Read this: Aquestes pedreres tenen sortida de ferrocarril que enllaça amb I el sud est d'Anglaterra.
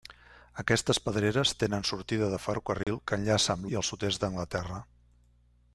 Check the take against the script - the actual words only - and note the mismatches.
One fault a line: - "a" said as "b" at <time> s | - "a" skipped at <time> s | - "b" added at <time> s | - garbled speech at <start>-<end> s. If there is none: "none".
none